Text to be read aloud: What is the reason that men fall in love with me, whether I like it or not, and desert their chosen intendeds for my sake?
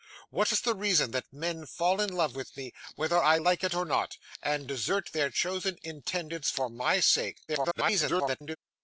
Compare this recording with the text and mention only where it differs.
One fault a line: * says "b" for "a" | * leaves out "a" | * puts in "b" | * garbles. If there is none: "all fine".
* garbles